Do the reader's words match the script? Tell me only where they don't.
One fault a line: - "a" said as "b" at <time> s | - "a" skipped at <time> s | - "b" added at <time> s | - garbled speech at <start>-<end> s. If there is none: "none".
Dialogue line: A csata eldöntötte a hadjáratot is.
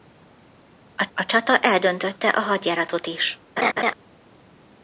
- "a" added at 1.1 s